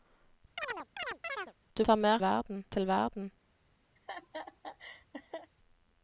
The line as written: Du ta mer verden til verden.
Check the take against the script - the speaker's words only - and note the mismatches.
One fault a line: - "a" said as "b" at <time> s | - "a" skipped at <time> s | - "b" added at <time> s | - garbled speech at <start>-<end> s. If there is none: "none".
none